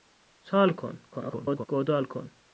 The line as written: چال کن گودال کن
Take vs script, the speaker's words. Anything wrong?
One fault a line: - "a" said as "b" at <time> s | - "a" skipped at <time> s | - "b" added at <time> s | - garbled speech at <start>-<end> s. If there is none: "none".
- garbled speech at 1.1-1.7 s